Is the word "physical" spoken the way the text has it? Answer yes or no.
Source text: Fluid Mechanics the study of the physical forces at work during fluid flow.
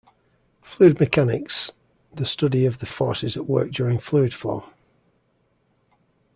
no